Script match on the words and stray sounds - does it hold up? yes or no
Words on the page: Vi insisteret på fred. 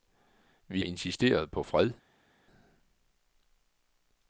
yes